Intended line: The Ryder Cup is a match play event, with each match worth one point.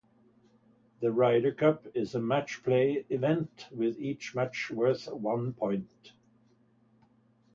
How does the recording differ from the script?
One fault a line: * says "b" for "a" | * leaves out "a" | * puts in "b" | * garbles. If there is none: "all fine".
all fine